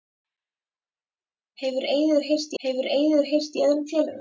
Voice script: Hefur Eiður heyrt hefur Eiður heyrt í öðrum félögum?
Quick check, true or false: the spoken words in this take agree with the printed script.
true